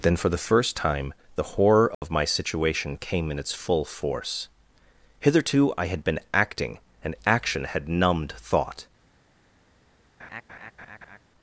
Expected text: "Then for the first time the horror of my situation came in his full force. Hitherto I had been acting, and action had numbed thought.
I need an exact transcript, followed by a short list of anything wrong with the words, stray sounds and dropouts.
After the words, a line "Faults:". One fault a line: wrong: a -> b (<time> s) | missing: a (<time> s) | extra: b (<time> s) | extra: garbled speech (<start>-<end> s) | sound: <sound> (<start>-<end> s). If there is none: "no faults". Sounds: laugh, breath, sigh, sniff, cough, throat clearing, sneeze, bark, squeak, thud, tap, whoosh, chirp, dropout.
"Then for the first time the horror of my situation came in its full force. Hitherto I had been acting, and action had numbed thought.
Faults:
sound: dropout (1.9-2.0 s)
wrong: his -> its (3.4 s)
sound: laugh (10.2-11.2 s)